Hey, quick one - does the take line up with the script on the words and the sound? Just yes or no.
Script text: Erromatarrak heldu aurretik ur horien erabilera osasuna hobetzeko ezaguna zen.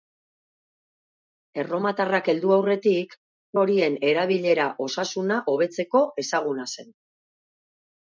no